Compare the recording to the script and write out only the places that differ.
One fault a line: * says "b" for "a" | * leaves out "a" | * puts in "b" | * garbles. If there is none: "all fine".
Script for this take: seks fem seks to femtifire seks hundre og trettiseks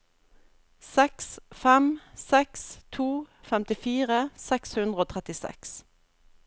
all fine